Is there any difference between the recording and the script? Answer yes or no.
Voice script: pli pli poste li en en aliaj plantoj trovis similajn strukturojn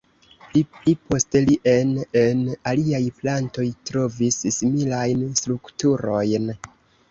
no